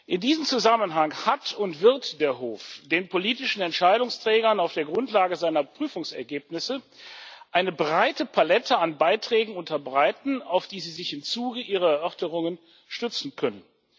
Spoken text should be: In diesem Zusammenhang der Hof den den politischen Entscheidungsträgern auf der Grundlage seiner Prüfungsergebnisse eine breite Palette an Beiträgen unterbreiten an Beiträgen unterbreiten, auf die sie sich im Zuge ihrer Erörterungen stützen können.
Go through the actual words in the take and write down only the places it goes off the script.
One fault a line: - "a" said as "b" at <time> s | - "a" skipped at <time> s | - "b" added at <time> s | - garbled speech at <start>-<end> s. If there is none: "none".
- "hat und wird" added at 1.3 s
- "den" skipped at 3.1 s
- "an Beiträgen unterbreiten" skipped at 10.4 s